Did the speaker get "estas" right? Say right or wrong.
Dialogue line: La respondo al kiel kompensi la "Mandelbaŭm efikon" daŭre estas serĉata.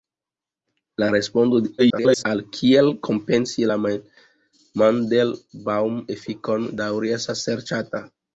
right